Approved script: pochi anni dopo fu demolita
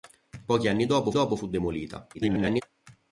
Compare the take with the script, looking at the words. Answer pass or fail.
fail